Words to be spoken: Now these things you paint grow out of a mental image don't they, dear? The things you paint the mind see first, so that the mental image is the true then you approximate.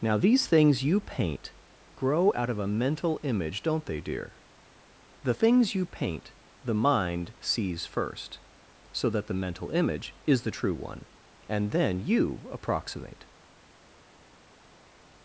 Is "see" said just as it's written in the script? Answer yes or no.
no